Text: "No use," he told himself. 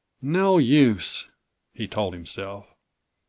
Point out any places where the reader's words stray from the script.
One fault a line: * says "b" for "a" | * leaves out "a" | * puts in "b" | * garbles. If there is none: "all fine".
all fine